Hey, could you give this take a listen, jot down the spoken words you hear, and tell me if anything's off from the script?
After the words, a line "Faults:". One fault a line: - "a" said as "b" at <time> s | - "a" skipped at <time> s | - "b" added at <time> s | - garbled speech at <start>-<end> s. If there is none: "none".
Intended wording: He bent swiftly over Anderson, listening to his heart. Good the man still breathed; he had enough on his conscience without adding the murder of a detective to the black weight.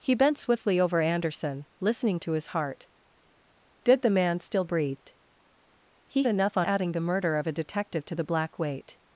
He bent swiftly over Anderson, listening to his heart. Good the man still breathed; he enough on adding the murder of a detective to the black weight.
Faults:
- "had" skipped at 6.2 s
- "his conscience without" skipped at 6.7 s